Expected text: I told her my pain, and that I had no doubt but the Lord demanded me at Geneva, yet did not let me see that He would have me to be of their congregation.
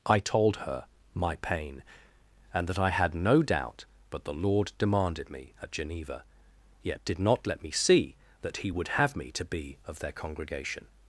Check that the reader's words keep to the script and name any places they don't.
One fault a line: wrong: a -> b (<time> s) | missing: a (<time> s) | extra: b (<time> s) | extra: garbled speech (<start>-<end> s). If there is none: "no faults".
no faults